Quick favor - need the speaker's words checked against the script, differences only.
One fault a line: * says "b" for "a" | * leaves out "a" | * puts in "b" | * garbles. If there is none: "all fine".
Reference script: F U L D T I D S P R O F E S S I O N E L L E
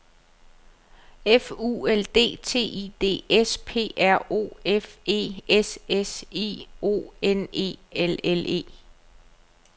all fine